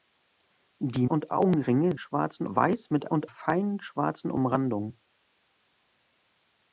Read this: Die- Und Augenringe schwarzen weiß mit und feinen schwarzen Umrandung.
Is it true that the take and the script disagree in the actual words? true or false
false